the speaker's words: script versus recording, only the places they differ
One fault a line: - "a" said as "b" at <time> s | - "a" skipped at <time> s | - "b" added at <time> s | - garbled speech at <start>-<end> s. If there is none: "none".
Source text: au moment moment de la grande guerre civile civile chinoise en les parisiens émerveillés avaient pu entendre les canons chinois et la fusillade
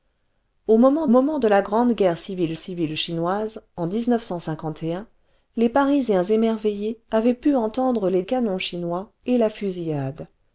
none